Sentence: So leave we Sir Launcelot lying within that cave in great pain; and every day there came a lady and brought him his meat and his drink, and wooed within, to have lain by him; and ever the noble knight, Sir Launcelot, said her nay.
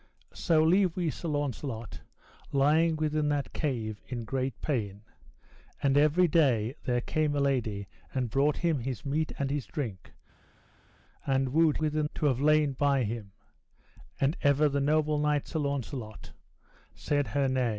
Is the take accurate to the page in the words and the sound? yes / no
yes